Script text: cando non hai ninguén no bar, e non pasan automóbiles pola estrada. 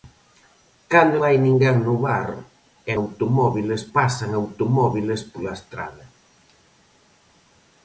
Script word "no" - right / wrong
right